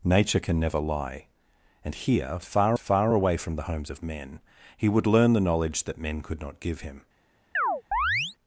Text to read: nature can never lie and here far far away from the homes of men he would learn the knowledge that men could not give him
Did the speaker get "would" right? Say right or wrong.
right